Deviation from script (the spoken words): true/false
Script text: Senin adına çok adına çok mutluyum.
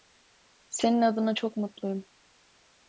true